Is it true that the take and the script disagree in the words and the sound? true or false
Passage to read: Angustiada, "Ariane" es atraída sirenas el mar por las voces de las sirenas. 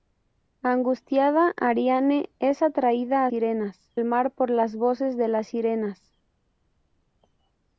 false